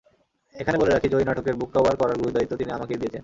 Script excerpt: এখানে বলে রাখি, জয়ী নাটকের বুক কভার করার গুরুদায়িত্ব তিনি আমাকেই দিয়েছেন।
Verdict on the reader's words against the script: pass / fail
pass